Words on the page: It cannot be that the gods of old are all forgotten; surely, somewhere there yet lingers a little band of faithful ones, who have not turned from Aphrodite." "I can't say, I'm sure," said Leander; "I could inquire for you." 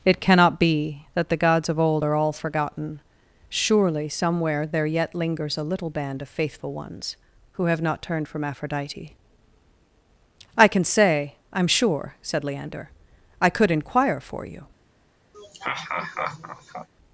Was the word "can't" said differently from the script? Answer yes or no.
yes